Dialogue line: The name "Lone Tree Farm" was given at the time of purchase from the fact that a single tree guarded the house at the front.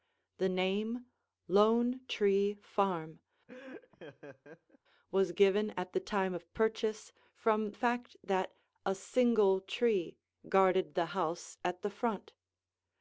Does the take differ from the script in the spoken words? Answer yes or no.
yes